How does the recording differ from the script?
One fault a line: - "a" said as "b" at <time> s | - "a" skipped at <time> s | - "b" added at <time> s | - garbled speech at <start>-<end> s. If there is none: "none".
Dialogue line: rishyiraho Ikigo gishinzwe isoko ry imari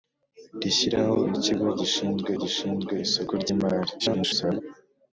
- "gishinzwe" added at 2.4 s
- garbled speech at 4.0-4.6 s